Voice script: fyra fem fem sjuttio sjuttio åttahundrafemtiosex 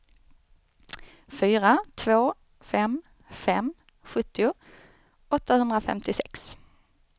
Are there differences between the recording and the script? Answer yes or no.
yes